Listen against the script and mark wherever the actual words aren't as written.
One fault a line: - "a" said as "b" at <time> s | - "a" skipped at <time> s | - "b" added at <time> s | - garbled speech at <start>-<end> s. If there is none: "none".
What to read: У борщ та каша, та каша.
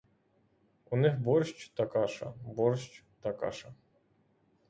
- "них" added at 1.0 s
- "борщ" added at 2.4 s